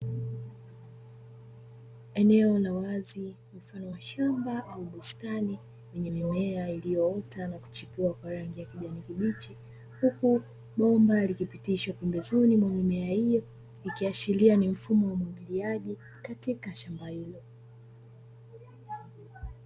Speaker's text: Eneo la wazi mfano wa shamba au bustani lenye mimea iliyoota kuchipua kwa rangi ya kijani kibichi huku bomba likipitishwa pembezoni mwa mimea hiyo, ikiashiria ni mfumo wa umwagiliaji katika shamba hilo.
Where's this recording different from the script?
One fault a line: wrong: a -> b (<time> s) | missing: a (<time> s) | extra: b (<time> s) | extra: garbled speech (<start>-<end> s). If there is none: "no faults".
extra: na (7.5 s)